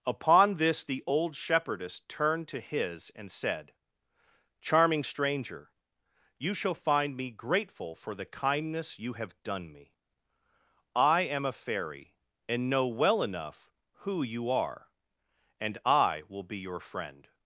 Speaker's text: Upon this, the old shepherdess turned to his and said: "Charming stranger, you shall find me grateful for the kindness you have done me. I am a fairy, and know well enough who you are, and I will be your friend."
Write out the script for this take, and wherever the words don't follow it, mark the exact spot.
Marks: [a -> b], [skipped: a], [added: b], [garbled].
Upon this, the old shepherdess turned to his and said: "Charming stranger, you shall find me grateful for the kindness you have done me. I am a fairy, and know well enough who you are, and I will be your friend."